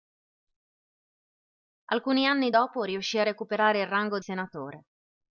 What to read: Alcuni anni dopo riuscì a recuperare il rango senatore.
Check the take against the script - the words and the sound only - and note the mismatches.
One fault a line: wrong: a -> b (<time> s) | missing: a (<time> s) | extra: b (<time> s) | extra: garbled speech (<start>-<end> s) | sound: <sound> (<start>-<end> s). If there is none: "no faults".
no faults